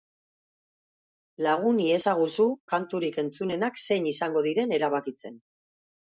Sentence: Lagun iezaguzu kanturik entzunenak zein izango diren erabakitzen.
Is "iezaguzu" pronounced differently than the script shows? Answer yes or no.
no